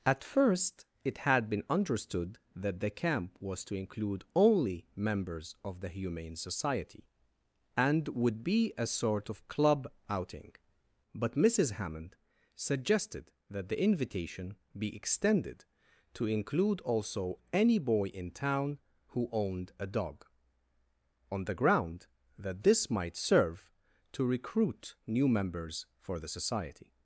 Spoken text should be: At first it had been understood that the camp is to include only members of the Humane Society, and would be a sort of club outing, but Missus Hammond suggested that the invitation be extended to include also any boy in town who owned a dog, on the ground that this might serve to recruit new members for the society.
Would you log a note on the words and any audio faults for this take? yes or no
yes